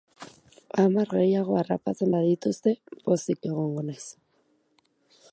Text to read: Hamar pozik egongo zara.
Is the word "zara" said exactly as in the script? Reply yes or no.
no